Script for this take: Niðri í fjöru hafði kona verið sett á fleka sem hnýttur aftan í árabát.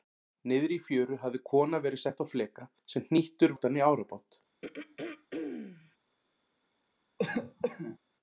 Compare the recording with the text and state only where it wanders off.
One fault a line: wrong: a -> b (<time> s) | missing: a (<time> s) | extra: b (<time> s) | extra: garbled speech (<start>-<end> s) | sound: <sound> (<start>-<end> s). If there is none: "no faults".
sound: throat clearing (4.6-6.0 s)
sound: cough (7.2-8.0 s)